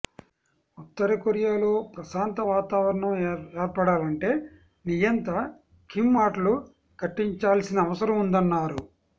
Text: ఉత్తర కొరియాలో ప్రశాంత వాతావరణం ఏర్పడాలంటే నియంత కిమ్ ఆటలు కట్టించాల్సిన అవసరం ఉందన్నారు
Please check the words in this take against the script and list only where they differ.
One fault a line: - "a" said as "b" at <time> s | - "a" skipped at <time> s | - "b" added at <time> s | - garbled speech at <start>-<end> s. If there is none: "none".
none